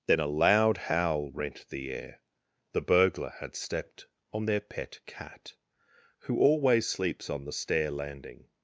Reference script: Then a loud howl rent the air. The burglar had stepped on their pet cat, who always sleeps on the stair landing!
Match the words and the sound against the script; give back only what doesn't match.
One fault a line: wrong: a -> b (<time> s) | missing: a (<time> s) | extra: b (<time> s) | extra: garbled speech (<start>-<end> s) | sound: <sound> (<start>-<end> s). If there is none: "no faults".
no faults